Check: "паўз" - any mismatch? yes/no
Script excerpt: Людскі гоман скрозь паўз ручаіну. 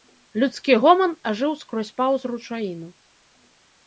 no